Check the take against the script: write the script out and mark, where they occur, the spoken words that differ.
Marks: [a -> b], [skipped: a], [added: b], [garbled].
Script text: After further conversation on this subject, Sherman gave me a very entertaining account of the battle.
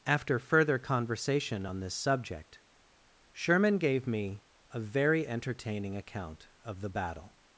After further conversation on this subject, Sherman gave me a very entertaining account of the battle.